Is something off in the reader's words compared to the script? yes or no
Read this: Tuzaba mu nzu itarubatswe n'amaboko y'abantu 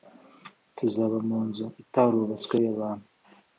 yes